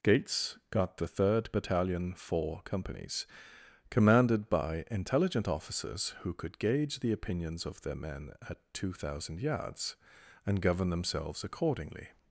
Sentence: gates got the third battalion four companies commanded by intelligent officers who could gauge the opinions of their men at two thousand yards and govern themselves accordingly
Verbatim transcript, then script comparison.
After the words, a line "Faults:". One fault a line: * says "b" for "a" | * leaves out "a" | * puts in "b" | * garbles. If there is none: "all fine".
gates got the third battalion four companies commanded by intelligent officers who could gauge the opinions of their men at two thousand yards and govern themselves accordingly
Faults:
all fine